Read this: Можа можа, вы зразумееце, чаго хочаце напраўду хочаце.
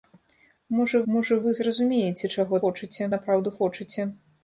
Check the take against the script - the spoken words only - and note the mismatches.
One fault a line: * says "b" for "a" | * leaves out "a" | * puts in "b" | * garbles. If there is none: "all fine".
all fine